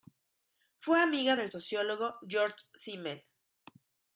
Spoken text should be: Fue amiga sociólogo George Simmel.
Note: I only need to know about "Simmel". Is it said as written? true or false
true